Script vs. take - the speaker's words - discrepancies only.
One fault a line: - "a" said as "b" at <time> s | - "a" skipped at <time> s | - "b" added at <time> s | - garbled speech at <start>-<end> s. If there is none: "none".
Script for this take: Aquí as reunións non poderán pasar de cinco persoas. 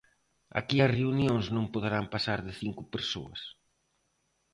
none